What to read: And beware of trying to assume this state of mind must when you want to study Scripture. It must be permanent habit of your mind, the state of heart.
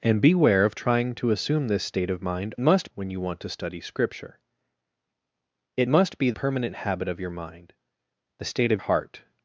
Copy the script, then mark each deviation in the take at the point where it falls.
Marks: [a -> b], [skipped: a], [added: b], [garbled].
And beware of trying to assume this state of mind must when you want to study Scripture. It must be permanent habit of your mind, the state of heart.